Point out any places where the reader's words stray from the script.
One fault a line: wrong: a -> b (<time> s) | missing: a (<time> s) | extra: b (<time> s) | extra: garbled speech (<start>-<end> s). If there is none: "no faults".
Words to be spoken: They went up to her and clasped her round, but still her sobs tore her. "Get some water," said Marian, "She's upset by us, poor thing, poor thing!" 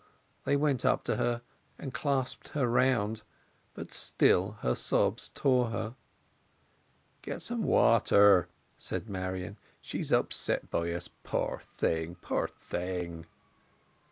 no faults